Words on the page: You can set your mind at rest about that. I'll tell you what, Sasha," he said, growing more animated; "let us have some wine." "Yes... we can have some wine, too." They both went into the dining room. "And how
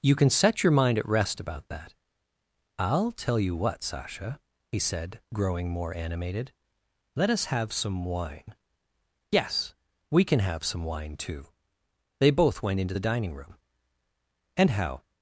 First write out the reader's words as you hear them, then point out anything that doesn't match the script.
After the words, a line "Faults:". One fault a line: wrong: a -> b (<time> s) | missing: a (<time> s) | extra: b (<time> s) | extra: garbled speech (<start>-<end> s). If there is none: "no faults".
You can set your mind at rest about that. I'll tell you what, Sasha," he said, growing more animated; "let us have some wine." "Yes... we can have some wine, too." They both went into the dining room. "And how
Faults:
no faults